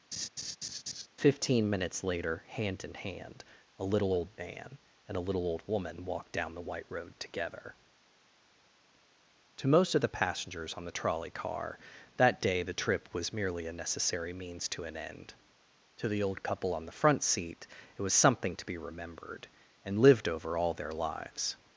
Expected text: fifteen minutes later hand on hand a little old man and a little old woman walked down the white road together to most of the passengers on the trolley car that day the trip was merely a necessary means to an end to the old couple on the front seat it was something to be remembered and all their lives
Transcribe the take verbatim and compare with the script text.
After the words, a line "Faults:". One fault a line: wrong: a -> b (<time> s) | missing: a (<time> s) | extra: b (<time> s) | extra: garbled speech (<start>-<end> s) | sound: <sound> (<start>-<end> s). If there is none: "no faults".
fifteen minutes later hand in hand a little old man and a little old woman walked down the white road together to most of the passengers on the trolley car that day the trip was merely a necessary means to an end to the old couple on the front seat it was something to be remembered and lived over all their lives
Faults:
sound: laugh (0.1-1.1 s)
wrong: on -> in (2.8 s)
extra: lived over (20.0 s)